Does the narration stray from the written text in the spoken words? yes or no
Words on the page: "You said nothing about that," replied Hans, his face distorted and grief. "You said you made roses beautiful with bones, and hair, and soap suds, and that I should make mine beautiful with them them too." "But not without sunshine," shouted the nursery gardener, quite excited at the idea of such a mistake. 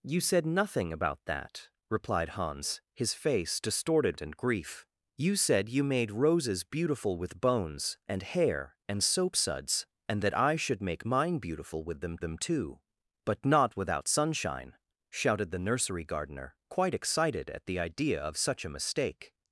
no